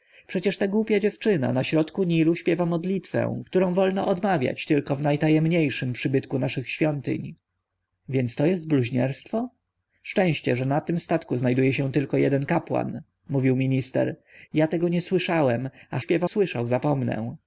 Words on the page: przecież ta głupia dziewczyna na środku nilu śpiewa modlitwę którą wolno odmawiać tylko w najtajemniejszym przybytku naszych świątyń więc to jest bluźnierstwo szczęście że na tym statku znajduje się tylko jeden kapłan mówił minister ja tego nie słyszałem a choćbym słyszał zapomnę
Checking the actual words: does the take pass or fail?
fail